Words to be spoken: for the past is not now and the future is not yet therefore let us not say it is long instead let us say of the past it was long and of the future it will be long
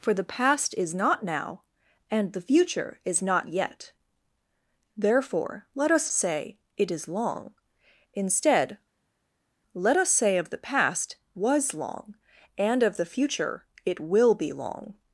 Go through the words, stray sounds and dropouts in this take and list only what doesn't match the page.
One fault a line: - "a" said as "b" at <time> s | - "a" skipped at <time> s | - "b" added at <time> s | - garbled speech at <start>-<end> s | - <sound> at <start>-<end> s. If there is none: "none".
- "not" skipped at 6.1 s
- "it" skipped at 11.2 s